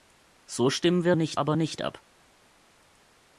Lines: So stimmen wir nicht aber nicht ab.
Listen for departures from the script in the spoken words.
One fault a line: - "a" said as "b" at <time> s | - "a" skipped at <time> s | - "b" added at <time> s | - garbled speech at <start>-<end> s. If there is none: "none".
none